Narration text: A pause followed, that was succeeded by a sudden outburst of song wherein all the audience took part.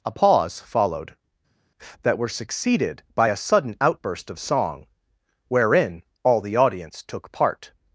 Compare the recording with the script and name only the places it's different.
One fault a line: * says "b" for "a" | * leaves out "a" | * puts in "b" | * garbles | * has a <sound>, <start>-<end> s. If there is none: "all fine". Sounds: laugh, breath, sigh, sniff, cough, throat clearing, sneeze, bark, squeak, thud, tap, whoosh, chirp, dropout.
* says "were" for "was"